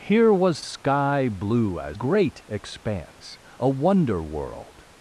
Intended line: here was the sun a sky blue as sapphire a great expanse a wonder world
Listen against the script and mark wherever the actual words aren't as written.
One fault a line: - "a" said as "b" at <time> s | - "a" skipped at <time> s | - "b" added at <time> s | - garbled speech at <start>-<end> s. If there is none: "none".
- "the sun a" skipped at 0.6 s
- "sapphire a" skipped at 2.0 s